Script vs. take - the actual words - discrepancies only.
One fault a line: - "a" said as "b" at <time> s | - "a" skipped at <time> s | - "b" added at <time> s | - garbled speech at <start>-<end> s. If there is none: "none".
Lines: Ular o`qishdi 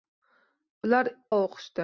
none